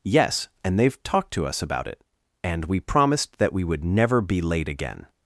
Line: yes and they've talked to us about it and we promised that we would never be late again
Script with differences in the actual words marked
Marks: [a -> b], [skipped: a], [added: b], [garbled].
yes and they've talked to us about it and we promised that we would never be late again